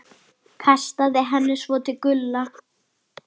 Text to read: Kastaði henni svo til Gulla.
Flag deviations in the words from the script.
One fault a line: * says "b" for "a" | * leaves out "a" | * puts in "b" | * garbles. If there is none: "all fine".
all fine